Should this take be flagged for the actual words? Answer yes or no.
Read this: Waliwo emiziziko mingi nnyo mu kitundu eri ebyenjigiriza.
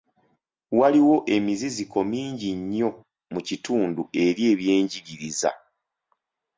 no